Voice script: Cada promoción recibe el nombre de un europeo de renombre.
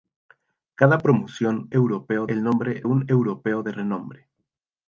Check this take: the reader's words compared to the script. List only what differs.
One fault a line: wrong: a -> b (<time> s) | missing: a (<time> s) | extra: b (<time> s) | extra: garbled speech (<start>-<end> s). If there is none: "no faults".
wrong: recibe -> europeo (1.7 s)
missing: de (2.8 s)